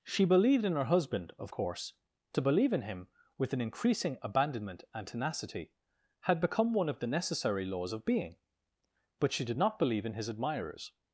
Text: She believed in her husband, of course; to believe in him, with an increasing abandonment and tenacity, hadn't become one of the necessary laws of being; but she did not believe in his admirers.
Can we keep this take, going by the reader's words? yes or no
no